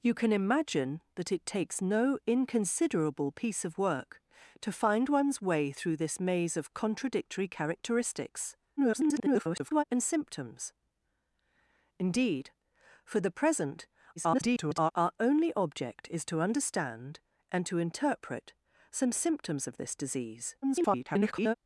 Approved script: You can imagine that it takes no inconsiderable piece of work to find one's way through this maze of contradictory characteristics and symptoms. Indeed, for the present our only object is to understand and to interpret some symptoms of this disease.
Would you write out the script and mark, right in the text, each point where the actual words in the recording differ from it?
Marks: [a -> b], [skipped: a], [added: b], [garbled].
You can imagine that it takes no inconsiderable piece of work to find one's way through this maze of contradictory characteristics [garbled] and symptoms. Indeed, for the present [garbled] our only object is to understand and to interpret some symptoms of this disease. [garbled]